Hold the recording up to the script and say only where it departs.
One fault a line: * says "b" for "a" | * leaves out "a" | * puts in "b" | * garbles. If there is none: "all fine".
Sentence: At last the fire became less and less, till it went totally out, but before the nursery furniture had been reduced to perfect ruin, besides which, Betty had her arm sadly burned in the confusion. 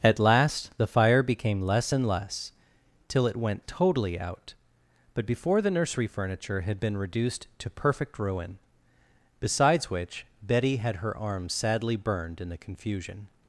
all fine